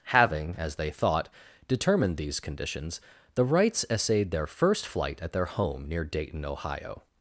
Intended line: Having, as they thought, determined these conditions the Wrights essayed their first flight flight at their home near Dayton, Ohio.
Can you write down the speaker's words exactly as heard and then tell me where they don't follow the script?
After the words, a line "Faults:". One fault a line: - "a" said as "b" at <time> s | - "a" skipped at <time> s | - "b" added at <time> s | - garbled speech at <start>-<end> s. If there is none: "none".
Having, as they thought, determined these conditions the Wrights essayed their first flight at their home near Dayton, Ohio.
Faults:
- "flight" skipped at 5.2 s